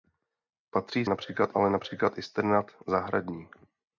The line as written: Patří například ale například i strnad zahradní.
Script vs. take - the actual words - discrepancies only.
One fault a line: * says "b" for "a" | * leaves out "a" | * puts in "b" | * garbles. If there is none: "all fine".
all fine